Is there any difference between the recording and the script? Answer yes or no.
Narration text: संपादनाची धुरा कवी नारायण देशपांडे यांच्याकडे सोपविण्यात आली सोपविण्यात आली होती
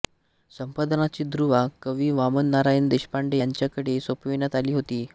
yes